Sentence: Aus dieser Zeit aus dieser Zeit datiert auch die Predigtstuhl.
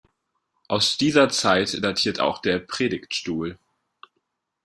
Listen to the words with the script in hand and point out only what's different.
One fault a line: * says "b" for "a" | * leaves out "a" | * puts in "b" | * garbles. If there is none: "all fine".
* leaves out "aus dieser Zeit"
* says "der" for "die"